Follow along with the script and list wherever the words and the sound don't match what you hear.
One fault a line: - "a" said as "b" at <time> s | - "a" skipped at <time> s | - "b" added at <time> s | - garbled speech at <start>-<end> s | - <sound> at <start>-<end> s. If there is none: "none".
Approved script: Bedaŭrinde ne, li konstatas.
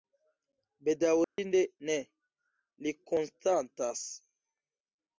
- dropout at 1.2-1.4 s